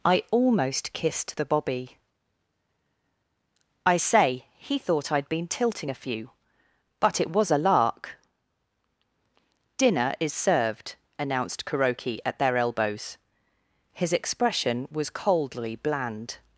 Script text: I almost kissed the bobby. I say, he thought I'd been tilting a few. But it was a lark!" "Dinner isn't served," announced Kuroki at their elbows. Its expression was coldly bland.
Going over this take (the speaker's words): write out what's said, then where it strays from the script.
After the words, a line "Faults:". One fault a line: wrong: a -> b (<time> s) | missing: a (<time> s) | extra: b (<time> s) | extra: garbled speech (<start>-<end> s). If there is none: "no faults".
I almost kissed the bobby. I say, he thought I'd been tilting a few. But it was a lark!" "Dinner is served," announced Kuroki at their elbows. His expression was coldly bland.
Faults:
wrong: isn't -> is (10.2 s)
wrong: Its -> His (13.9 s)